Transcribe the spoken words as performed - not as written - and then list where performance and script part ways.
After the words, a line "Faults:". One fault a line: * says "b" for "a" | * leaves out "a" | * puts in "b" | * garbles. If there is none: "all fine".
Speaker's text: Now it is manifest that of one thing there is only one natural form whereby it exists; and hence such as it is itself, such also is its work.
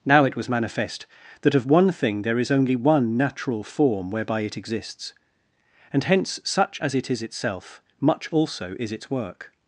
Now it was manifest that of one thing there is only one natural form whereby it exists; and hence such as it is itself, much also is its work.
Faults:
* says "was" for "is"
* says "much" for "such"